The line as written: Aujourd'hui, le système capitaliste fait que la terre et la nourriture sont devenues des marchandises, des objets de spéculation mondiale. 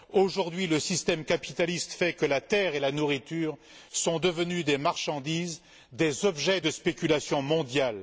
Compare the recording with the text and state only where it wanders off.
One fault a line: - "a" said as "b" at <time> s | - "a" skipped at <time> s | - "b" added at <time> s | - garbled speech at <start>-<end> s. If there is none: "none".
none